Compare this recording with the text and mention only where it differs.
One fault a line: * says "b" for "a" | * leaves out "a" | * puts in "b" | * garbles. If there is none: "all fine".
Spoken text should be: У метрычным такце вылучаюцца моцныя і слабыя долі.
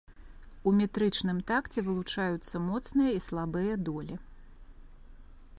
all fine